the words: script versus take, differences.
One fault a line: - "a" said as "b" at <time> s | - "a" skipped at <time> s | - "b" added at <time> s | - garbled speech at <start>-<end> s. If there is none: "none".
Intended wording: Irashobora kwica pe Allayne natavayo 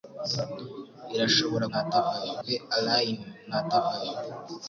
- "kwica" said as "natavayo" at 1.7 s